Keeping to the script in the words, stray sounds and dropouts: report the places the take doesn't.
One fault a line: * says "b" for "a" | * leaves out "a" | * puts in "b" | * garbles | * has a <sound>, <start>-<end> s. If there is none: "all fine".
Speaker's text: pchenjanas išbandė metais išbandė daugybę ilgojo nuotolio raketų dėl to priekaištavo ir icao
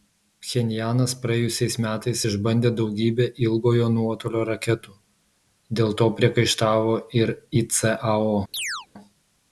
* says "praėjusiais" for "išbandė"
* has a chirp, 8.5-8.9 s